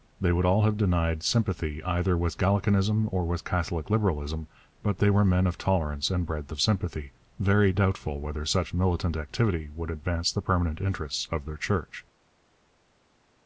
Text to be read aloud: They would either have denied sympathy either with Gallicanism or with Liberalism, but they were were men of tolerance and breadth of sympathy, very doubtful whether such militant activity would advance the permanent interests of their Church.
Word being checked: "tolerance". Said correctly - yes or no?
yes